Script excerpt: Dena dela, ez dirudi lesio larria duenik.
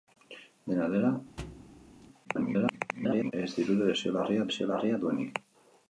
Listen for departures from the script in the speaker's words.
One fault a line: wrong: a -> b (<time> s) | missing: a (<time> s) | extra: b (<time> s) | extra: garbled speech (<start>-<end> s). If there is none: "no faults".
extra: garbled speech (2.2-3.3 s)
extra: lesio larria (4.5 s)